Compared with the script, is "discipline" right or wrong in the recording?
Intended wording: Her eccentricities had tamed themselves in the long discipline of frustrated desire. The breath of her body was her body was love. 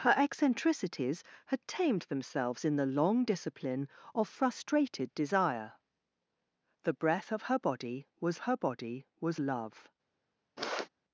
right